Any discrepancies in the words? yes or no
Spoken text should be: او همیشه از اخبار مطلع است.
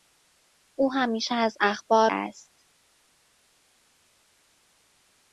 yes